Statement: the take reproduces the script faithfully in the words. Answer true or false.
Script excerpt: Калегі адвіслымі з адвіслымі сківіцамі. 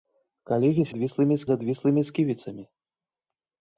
true